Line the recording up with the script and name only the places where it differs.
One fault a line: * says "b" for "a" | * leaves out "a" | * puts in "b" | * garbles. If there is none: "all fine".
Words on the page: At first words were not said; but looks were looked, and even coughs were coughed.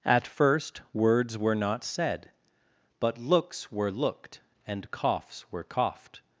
* leaves out "even"